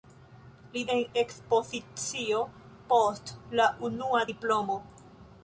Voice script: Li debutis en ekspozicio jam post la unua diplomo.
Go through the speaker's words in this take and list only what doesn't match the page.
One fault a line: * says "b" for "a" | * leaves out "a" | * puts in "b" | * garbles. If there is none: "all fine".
* leaves out "debutis"
* leaves out "jam"